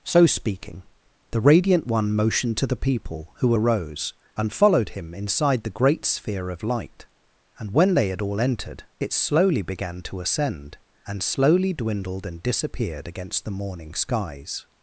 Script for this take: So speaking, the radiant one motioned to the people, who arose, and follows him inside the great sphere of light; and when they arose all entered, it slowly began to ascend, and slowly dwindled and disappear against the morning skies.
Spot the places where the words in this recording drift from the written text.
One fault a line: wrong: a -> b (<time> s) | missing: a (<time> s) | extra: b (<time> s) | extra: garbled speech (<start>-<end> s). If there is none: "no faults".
wrong: follows -> followed (4.5 s)
wrong: arose -> had (8.1 s)
wrong: disappear -> disappeared (12.4 s)